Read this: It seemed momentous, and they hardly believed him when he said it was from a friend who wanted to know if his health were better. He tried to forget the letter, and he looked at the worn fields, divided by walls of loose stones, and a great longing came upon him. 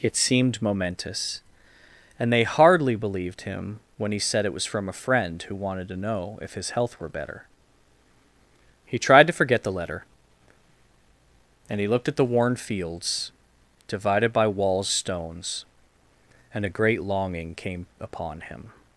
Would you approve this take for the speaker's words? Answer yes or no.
no